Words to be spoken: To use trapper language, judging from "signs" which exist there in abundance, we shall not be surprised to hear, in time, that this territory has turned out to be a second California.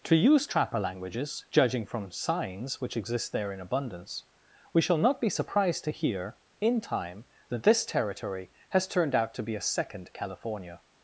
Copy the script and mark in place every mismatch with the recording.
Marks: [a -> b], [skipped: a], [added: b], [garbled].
To use trapper [language, -> languages] judging from "signs" which exist there in abundance, we shall not be surprised to hear, in time, that this territory has turned out to be a second California.